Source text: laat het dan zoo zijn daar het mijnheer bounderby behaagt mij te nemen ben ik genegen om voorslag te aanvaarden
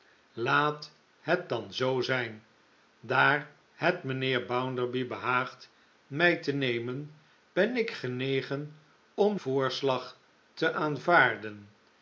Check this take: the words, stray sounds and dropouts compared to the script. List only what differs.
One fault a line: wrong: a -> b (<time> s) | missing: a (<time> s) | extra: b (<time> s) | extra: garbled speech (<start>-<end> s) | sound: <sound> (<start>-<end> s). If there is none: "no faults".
no faults